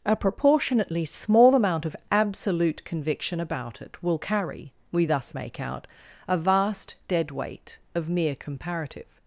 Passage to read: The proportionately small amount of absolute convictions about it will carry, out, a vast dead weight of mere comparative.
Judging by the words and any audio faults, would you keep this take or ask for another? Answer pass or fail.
fail